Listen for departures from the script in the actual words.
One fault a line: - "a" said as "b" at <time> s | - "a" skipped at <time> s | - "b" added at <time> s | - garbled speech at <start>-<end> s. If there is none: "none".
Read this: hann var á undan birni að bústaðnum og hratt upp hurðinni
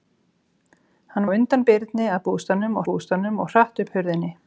- "var" skipped at 1.3 s
- "bústaðnum" added at 2.9 s